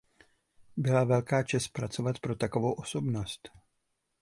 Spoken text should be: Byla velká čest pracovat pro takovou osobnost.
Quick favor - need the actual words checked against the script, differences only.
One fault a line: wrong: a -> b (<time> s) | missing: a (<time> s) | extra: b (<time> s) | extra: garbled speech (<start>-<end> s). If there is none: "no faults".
no faults